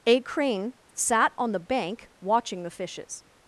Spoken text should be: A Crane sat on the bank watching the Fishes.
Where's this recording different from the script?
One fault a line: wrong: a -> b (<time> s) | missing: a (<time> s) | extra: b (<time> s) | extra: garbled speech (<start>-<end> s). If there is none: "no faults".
no faults